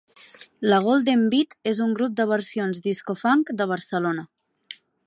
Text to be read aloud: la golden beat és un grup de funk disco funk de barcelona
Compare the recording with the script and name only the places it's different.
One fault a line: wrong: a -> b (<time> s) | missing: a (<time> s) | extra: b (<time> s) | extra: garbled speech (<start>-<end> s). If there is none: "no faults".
wrong: funk -> versions (2.3 s)